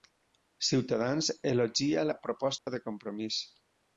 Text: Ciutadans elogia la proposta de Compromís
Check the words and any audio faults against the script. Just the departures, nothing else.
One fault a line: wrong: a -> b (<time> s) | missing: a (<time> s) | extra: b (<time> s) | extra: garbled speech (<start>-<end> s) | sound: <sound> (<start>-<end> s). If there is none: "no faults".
sound: dropout (2.6-2.7 s)